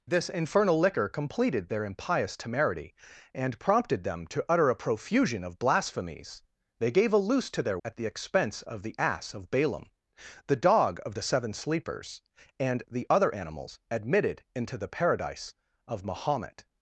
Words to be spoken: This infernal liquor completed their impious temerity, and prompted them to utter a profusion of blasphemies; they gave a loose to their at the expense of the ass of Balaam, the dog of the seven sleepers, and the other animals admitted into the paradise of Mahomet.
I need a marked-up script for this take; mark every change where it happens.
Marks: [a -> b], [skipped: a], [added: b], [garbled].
This infernal liquor completed their impious temerity, and prompted them to utter a profusion of blasphemies; they gave a loose to their at the expense of the ass of Balaam, the dog of the seven sleepers, and the other animals admitted into the paradise of Mahomet.